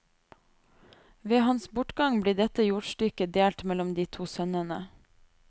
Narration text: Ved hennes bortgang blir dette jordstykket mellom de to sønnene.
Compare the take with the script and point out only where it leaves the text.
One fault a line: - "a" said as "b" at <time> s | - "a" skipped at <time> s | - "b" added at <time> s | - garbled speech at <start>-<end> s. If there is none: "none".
- "hennes" said as "hans" at 1.5 s
- "delt" added at 3.4 s